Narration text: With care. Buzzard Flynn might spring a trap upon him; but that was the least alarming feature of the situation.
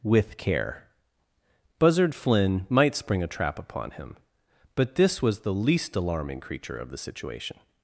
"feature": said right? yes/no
no